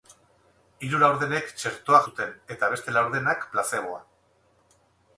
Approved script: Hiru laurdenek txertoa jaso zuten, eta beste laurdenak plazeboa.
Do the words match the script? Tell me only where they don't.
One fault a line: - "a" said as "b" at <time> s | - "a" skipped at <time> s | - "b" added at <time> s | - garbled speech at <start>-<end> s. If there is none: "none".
- "jaso" skipped at 2.0 s